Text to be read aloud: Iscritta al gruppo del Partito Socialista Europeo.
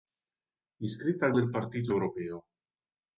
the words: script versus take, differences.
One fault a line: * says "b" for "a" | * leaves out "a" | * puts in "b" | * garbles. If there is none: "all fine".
* leaves out "gruppo"
* leaves out "Socialista"